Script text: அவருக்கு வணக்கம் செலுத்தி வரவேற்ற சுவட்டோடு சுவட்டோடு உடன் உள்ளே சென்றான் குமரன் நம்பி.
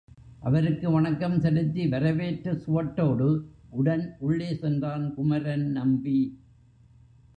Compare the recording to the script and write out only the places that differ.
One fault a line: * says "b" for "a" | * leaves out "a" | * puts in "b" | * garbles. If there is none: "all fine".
* leaves out "சுவட்டோடு"